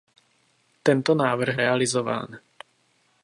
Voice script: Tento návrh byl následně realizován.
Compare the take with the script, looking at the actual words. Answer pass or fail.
fail